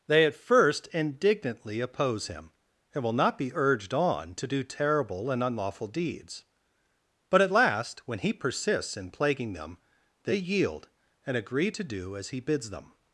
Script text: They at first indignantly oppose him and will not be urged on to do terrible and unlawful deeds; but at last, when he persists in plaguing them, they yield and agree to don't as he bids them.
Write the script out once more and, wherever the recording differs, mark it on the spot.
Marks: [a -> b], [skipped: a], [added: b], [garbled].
They at first indignantly oppose him and will not be urged on to do terrible and unlawful deeds; but at last, when he persists in plaguing them, they yield and agree to [don't -> do] as he bids them.